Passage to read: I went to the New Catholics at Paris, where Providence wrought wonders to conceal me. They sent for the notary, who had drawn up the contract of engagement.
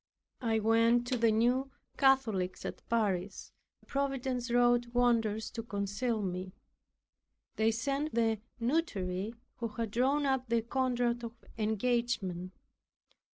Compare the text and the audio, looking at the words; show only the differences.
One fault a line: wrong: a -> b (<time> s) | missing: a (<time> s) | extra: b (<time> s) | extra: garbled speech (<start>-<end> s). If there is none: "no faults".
missing: where (3.5 s)
missing: for (8.1 s)